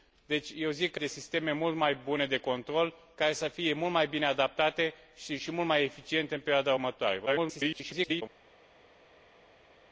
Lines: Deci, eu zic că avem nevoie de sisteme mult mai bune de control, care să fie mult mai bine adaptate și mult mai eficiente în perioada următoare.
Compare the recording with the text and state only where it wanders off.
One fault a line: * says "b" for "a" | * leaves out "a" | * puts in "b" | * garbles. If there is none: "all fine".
* leaves out "avem nevoie"
* garbles